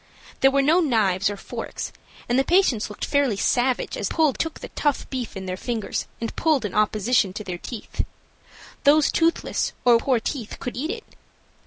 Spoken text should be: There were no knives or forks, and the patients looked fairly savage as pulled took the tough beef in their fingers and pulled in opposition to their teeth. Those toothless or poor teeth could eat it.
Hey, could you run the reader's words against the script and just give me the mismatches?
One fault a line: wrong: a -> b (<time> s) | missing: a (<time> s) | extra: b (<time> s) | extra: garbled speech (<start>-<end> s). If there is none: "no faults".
no faults